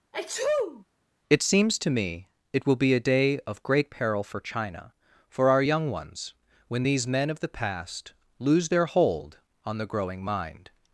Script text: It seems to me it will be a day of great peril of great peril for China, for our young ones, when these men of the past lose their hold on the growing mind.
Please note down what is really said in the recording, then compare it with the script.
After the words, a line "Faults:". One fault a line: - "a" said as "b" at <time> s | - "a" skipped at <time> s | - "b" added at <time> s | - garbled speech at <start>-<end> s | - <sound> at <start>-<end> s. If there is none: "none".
It seems to me it will be a day of great peril for China, for our young ones, when these men of the past lose their hold on the growing mind.
Faults:
- sneeze at 0.1-0.8 s
- "of great peril" skipped at 4.2 s